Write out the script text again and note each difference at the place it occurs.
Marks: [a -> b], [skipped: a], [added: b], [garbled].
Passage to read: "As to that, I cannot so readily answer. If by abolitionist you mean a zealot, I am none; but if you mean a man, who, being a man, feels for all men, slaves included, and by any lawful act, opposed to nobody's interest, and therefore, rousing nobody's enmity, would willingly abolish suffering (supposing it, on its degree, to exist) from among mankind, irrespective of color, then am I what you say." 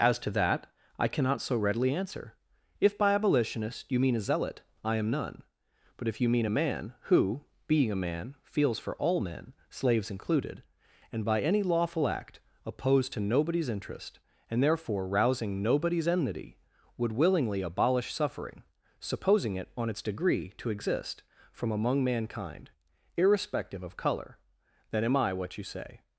"As to that, I cannot so readily answer. If by abolitionist you mean a zealot, I am none; but if you mean a man, who, being a man, feels for all men, slaves included, and by any lawful act, opposed to nobody's interest, and therefore, rousing nobody's enmity, would willingly abolish suffering (supposing it, on its degree, to exist) from among mankind, irrespective of color, then am I what you say."